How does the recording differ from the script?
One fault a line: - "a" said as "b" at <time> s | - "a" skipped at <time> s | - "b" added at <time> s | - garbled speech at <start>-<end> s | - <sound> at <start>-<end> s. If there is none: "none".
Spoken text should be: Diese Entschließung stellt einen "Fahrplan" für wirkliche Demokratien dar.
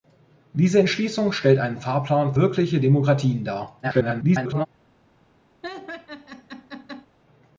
- "für" skipped at 2.3 s
- garbled speech at 3.8-4.7 s
- laugh at 5.6-7.1 s